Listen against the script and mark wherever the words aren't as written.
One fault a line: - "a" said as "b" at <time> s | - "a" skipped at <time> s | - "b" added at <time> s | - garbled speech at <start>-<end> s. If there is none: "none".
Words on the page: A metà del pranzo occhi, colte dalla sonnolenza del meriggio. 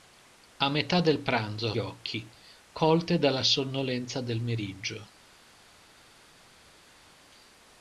none